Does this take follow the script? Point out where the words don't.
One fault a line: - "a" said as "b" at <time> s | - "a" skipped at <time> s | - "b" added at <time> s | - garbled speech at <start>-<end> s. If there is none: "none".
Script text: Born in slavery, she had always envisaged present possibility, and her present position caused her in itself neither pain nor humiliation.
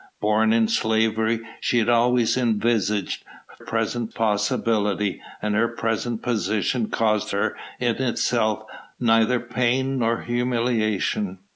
none